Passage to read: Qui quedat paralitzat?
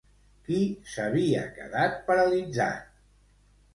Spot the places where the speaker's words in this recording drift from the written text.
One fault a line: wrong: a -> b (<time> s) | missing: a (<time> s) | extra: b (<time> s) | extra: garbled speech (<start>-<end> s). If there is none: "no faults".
extra: s'havia (0.9 s)